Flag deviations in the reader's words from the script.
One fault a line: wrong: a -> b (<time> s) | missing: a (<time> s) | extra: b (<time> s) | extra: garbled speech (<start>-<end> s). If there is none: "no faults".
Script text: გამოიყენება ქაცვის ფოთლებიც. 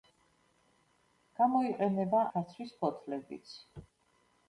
no faults